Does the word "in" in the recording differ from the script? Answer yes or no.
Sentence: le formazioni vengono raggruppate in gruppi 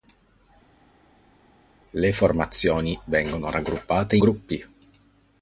yes